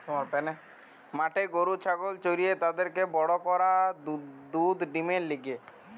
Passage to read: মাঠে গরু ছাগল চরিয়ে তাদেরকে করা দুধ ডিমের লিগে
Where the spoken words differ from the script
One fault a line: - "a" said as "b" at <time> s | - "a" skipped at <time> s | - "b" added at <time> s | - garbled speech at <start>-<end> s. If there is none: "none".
- "বড়" added at 3.1 s